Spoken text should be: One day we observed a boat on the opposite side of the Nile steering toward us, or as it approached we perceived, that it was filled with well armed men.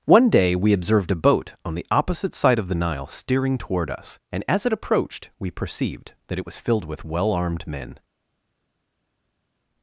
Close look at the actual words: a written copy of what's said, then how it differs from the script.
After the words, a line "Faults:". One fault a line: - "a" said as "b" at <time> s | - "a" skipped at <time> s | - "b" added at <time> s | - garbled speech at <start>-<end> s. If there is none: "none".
One day we observed a boat on the opposite side of the Nile steering toward us, and as it approached we perceived, that it was filled with well armed men.
Faults:
- "or" said as "and" at 4.3 s